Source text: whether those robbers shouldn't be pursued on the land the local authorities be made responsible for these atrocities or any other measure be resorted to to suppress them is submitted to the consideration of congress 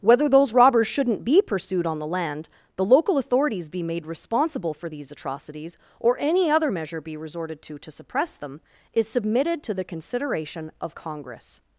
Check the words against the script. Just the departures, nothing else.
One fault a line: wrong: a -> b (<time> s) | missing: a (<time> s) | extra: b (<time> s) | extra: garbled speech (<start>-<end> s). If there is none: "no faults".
no faults